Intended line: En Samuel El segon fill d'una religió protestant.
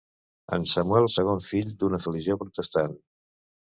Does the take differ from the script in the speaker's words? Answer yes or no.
no